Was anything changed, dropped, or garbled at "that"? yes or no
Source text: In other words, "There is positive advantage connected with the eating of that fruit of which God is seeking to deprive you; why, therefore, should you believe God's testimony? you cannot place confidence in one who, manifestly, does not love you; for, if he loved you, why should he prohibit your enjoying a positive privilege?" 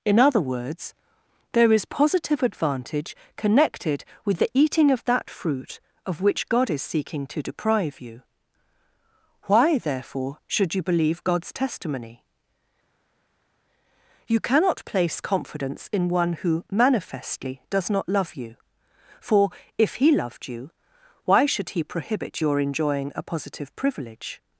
no